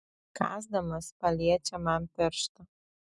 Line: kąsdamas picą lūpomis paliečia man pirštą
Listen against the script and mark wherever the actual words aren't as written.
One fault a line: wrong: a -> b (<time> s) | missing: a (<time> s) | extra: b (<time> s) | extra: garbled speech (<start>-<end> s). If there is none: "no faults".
missing: picą lūpomis (1.1 s)